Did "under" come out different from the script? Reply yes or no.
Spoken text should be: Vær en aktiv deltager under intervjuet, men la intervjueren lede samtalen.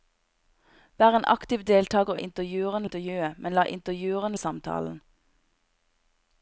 yes